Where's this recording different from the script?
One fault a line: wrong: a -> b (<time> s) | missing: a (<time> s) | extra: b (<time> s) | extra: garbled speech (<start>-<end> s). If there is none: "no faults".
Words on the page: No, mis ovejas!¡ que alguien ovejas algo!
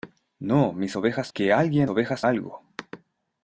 no faults